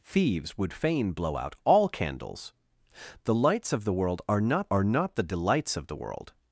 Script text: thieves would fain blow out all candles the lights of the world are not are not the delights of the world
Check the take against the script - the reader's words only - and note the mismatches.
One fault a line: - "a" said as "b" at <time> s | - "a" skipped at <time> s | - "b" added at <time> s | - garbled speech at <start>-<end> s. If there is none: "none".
none